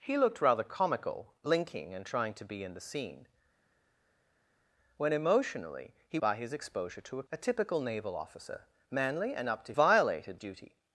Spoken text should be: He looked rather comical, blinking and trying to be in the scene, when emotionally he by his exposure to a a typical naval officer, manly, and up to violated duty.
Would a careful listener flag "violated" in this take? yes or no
no